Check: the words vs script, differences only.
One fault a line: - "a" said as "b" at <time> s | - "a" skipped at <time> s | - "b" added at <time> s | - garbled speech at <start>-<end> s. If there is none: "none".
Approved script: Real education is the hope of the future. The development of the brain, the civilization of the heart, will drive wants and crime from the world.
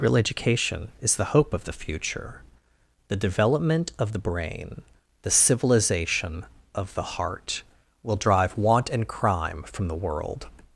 - "wants" said as "want" at 8.6 s